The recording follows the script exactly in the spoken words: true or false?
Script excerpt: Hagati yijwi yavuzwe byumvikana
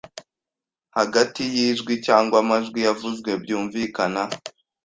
false